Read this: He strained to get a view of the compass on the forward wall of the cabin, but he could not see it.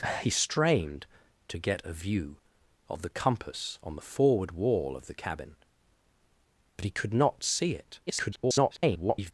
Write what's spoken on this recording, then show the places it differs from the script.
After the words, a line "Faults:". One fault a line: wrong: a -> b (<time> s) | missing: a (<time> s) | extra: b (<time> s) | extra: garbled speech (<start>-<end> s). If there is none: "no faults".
He strained to get a view of the compass on the forward wall of the cabin, but he could not see it. [garbled]
Faults:
extra: garbled speech (8.1-9.3 s)